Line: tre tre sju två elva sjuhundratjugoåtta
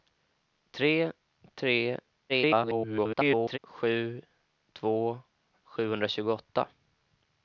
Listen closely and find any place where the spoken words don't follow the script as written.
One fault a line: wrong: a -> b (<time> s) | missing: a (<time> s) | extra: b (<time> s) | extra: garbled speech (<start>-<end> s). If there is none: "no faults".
extra: garbled speech (2.3-3.6 s)
missing: elva (5.2 s)